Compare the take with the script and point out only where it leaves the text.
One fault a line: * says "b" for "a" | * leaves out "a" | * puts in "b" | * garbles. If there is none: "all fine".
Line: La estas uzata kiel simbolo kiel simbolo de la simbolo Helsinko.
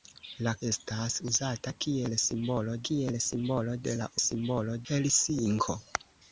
all fine